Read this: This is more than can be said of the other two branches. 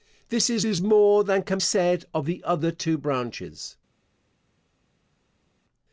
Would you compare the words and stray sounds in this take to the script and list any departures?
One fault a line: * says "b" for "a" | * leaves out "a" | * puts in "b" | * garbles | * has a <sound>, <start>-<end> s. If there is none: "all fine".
* puts in "is"
* leaves out "be"